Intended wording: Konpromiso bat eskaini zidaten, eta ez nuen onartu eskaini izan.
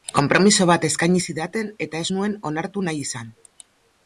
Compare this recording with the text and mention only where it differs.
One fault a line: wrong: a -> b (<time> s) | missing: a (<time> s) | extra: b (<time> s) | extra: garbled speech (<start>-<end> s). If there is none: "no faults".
wrong: eskaini -> nahi (2.9 s)